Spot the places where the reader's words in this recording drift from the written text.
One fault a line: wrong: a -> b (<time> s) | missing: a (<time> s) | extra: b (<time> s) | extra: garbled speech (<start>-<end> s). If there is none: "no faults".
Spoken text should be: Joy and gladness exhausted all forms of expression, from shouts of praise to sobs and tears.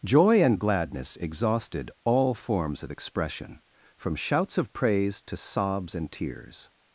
no faults